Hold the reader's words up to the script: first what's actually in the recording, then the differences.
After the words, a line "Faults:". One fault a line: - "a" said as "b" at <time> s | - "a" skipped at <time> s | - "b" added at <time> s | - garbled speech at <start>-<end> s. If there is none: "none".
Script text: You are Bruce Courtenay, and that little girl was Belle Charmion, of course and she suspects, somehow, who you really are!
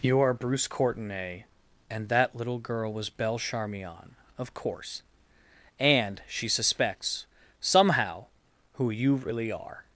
You are Bruce Courtenay, and that little girl was Belle Charmion, of course and she suspects, somehow, who you really are!
Faults:
none